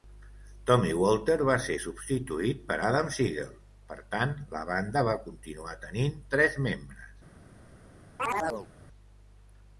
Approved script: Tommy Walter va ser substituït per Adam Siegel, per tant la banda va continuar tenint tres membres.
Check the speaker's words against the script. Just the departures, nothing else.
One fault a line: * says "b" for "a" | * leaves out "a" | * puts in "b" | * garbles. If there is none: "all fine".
all fine